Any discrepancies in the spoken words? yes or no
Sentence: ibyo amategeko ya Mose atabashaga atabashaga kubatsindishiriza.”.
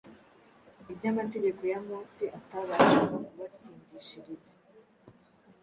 yes